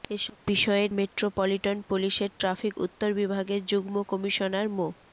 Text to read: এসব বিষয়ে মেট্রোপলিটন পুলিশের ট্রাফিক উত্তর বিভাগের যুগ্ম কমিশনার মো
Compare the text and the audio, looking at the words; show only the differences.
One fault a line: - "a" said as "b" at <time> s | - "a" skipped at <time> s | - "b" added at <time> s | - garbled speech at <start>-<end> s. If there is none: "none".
none